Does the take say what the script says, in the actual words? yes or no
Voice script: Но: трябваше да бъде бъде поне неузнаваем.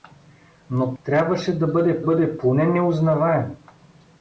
yes